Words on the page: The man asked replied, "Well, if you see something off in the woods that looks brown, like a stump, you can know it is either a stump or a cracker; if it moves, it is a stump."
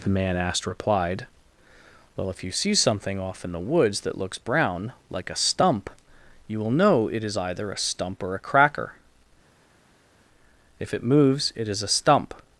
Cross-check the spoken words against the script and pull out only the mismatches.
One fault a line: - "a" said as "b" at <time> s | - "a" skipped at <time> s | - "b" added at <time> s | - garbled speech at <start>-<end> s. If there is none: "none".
- "can" said as "will" at 6.6 s